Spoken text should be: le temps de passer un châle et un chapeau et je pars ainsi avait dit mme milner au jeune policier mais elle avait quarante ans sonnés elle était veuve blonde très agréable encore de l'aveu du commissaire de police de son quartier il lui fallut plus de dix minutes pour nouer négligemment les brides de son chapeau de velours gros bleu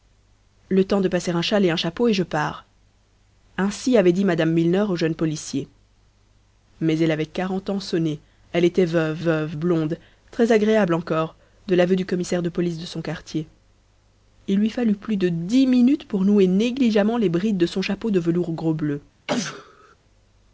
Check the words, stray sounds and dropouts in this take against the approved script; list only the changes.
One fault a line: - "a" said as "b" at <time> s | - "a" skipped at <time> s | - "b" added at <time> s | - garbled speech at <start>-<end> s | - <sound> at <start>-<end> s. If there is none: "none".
- "veuve" added at 9.2 s
- sneeze at 19.3-19.9 s